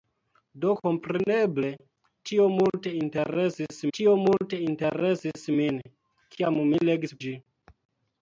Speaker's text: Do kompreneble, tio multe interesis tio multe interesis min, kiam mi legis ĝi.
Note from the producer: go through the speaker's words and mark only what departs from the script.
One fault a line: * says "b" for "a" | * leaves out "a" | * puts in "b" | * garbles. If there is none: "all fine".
all fine